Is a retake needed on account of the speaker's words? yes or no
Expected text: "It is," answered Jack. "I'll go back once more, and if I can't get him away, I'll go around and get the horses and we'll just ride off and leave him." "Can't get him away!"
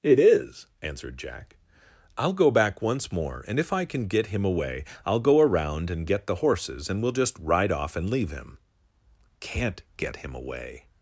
yes